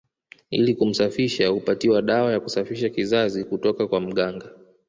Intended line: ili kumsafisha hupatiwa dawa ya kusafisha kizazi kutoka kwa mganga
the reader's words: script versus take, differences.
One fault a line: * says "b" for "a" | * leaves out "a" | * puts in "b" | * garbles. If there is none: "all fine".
all fine